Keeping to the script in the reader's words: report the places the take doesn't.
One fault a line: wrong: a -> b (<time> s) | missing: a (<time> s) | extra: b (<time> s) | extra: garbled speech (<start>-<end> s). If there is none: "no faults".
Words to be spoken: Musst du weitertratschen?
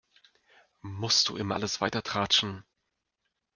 extra: immer alles (1.4 s)